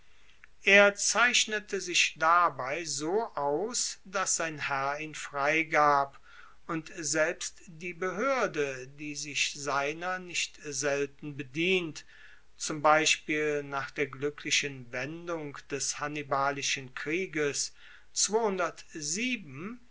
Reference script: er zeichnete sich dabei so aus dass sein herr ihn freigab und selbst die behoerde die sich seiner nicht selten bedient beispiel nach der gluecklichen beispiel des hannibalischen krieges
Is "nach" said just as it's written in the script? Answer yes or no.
yes